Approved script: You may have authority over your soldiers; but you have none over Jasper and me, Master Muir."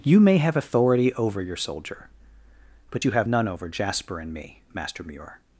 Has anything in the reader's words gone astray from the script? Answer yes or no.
yes